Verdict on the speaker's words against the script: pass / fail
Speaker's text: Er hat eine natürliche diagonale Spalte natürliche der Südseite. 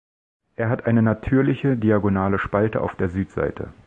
fail